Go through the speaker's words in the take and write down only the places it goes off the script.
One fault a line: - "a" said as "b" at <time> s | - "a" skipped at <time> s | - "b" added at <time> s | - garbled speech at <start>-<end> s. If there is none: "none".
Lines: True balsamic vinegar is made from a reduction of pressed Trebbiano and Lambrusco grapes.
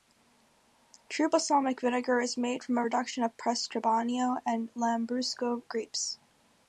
none